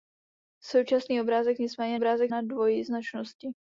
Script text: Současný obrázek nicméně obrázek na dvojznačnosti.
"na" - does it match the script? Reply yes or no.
yes